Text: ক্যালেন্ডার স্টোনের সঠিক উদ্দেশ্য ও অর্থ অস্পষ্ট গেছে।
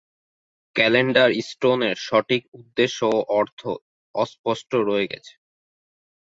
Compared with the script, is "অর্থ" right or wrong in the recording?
right